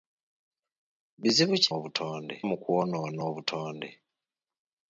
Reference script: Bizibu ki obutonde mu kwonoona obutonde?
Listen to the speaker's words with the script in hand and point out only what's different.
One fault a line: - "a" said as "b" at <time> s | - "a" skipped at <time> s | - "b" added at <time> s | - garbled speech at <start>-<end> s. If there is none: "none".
none